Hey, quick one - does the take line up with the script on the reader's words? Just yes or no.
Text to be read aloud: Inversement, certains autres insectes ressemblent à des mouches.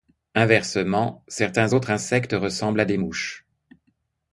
yes